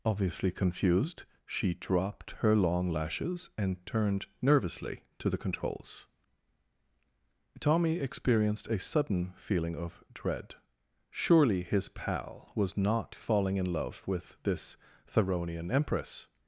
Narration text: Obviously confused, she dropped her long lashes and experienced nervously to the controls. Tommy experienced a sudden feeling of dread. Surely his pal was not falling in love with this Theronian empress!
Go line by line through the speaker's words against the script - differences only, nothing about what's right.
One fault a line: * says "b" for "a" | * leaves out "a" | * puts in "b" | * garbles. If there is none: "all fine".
* says "turned" for "experienced"